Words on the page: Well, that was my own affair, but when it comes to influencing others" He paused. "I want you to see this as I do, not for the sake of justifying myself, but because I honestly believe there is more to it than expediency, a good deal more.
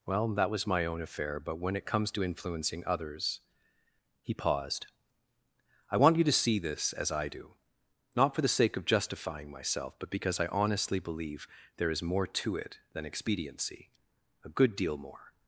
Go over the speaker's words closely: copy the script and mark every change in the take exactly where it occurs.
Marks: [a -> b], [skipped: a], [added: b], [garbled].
Well, that was my own affair, but when it comes to influencing others" He paused. "I want you to see this as I do, not for the sake of justifying myself, but because I honestly believe there is more to it than expediency, a good deal more.